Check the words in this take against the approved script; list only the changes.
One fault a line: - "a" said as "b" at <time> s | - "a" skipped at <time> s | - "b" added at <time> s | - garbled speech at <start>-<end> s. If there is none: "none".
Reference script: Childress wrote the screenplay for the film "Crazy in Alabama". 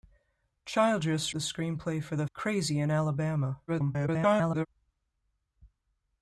- "wrote" skipped at 1.4 s
- "film" skipped at 2.3 s
- garbled speech at 3.7-4.7 s